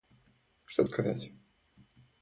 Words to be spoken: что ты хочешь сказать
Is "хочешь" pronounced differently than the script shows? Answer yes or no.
yes